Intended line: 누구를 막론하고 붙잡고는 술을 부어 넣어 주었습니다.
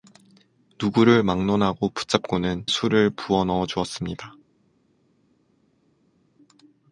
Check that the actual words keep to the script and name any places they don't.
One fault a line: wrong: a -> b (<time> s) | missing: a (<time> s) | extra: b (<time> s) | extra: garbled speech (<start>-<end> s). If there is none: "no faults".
no faults